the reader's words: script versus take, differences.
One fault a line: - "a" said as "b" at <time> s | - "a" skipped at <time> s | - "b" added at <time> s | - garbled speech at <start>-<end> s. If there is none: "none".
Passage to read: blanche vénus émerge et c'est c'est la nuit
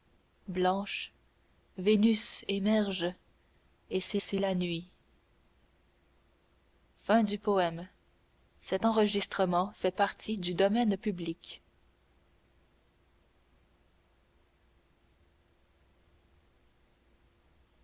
none